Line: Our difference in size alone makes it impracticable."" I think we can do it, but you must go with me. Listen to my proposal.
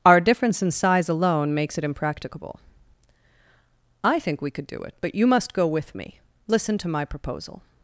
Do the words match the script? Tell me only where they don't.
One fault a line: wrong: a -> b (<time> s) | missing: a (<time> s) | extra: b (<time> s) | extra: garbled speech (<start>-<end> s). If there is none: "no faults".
wrong: can -> could (4.5 s)